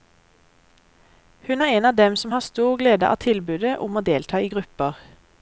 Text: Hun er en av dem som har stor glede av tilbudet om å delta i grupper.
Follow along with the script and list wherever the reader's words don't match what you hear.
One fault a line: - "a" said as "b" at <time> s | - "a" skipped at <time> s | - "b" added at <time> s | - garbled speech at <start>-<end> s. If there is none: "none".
none